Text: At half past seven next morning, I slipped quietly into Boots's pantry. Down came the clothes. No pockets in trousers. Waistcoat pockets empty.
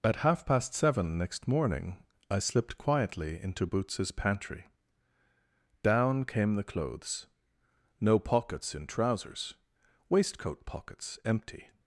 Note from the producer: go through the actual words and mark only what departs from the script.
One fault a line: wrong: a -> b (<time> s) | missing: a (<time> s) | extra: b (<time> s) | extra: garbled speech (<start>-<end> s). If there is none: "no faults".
no faults